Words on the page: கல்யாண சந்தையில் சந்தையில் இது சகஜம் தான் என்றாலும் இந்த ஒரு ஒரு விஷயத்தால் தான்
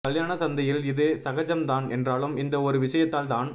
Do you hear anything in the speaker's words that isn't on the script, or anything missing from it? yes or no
yes